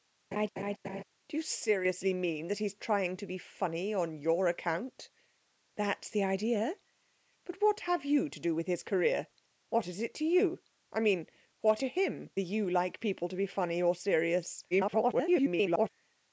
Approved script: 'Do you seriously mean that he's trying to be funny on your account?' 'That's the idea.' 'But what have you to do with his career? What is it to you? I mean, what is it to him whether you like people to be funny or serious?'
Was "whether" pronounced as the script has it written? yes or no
no